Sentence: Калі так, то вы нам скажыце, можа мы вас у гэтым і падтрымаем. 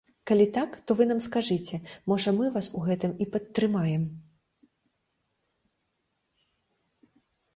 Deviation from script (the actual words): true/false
false